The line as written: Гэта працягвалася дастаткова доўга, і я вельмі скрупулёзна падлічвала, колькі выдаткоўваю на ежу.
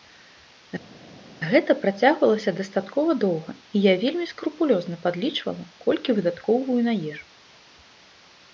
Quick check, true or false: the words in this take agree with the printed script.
true